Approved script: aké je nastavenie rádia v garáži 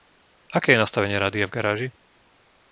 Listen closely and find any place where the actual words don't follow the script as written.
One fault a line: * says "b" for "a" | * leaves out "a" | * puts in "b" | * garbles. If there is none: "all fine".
all fine